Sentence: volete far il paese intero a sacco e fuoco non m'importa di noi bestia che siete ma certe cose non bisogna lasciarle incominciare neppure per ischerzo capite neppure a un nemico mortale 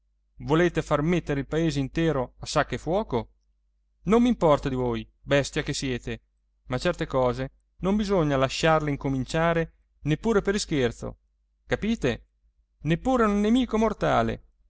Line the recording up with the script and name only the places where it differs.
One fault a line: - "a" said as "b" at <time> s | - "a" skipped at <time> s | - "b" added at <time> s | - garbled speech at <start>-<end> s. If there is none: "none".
- "mettere" added at 1.0 s
- "noi" said as "voi" at 4.7 s